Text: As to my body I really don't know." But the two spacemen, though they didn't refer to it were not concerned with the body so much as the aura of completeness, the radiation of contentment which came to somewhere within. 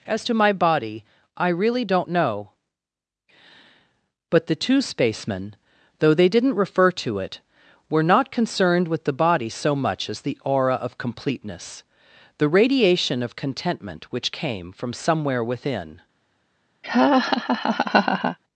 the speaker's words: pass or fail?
fail